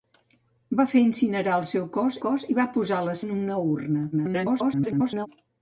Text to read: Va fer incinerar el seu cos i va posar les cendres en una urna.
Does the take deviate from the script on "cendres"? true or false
true